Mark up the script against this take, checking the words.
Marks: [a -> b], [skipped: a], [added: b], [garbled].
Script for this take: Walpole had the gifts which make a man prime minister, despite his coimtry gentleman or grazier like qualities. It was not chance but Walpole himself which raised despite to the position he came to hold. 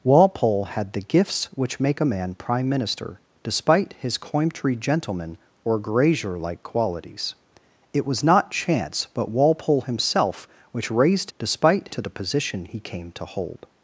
Walpole had the gifts which make a man prime minister, despite his coimtry gentleman or grazier like qualities. It was not chance but Walpole himself which raised despite to the position he came to hold.